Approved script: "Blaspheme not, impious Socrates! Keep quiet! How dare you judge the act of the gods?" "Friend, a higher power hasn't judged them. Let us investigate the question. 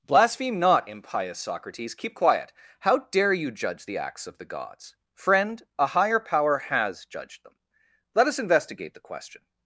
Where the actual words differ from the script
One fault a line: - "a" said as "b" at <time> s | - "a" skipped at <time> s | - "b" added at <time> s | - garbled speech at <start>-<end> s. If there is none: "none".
- "act" said as "acts" at 4.0 s
- "hasn't" said as "has" at 6.6 s